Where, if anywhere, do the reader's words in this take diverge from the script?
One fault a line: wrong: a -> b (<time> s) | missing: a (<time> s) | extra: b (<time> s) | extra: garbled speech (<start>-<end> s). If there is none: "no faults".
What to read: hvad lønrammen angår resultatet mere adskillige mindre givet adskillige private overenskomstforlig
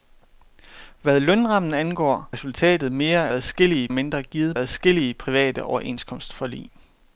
no faults